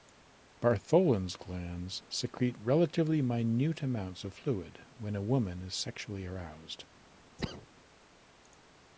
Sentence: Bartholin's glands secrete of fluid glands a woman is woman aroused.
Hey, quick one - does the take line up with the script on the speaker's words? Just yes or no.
no